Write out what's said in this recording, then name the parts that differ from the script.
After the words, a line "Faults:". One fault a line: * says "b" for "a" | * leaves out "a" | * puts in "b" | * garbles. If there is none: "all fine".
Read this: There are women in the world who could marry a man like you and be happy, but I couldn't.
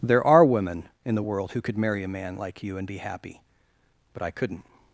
There are women in the world who could marry a man like you and be happy, but I couldn't.
Faults:
all fine